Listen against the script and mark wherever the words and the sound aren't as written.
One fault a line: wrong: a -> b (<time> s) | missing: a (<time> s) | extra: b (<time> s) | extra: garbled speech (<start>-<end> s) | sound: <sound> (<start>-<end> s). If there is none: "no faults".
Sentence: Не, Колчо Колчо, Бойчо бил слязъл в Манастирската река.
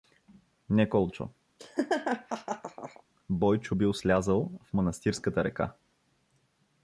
missing: Колчо (1.3 s)
sound: laugh (1.6-3.0 s)